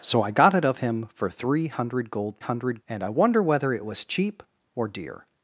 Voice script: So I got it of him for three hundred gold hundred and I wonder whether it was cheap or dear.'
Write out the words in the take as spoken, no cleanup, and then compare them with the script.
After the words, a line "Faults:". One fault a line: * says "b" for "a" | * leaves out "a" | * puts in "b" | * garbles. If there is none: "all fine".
So I got it of him for three hundred gold hundred and I wonder whether it was cheap or dear.'
Faults:
all fine